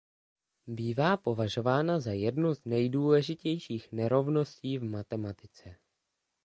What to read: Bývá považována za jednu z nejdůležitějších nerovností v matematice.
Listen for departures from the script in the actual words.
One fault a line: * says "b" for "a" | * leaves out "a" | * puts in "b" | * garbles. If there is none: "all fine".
all fine